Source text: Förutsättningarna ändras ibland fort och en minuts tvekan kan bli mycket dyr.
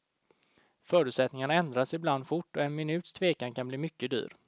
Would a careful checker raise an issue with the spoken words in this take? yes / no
no